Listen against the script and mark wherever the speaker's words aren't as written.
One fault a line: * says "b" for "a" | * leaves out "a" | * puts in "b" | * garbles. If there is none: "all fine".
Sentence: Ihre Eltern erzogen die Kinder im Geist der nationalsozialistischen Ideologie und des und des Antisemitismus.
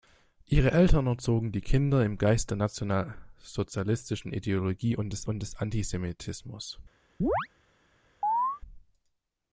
all fine